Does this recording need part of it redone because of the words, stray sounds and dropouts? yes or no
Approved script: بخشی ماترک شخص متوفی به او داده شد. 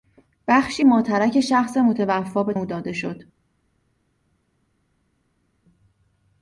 no